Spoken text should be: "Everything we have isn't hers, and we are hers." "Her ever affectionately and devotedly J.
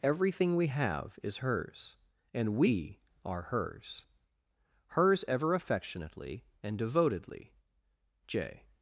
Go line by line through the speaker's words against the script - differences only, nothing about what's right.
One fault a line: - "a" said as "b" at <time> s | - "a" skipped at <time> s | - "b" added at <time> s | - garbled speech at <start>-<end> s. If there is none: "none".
- "isn't" said as "is" at 1.2 s
- "Her" said as "Hers" at 4.9 s